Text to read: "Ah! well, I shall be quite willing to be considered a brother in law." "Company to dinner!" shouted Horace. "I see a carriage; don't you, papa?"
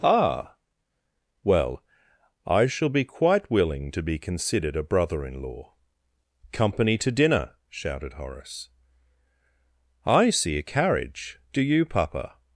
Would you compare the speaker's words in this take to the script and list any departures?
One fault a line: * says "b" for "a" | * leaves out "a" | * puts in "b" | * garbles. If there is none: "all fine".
* says "do" for "don't"